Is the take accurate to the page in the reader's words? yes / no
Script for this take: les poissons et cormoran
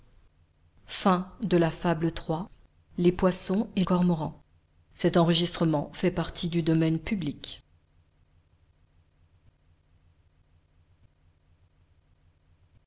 yes